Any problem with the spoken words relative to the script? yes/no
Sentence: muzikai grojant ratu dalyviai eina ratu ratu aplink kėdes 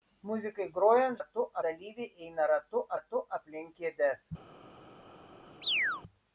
no